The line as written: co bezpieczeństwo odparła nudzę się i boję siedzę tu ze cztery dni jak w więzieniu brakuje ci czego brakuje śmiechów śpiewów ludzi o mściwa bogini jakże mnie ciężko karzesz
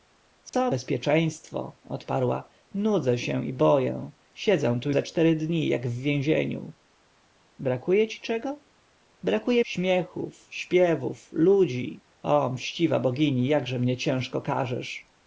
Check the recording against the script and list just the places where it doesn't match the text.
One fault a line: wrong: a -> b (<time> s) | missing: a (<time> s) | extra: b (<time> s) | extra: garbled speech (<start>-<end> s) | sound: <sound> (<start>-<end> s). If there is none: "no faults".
sound: dropout (0.5-0.5 s)